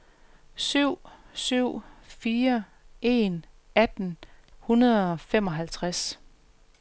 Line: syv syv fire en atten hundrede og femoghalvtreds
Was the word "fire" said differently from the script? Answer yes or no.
no